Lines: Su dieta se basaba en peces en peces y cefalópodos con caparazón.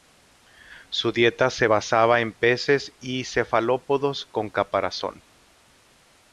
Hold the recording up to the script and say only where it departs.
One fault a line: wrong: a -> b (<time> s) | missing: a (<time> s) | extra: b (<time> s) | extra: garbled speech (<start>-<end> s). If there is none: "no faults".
missing: en peces (2.9 s)